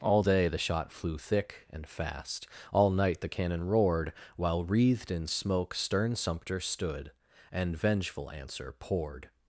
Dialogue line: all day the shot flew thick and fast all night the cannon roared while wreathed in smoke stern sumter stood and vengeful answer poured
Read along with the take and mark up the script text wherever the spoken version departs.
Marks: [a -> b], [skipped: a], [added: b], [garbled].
all day the shot flew thick and fast all night the cannon roared while wreathed in smoke stern sumter stood and vengeful answer poured